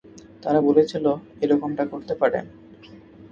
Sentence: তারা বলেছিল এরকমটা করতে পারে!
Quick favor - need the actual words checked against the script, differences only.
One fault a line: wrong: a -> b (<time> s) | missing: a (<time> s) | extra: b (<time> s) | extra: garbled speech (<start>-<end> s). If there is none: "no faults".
no faults